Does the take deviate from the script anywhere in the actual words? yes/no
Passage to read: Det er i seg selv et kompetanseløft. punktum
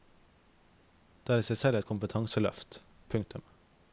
no